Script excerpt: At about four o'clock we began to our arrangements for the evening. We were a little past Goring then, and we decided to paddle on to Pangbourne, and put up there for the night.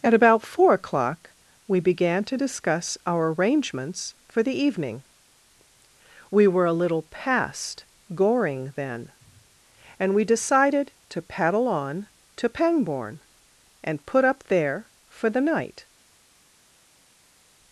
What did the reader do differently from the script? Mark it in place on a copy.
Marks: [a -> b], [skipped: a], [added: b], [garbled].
At about four o'clock we began to [added: discuss] our arrangements for the evening. We were a little past Goring then, and we decided to paddle on to Pangbourne, and put up there for the night.